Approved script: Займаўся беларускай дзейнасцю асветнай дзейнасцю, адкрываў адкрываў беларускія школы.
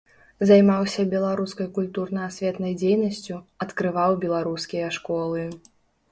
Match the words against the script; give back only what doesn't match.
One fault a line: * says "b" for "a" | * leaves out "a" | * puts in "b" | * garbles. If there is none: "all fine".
* says "культурна" for "дзейнасцю"
* leaves out "адкрываў"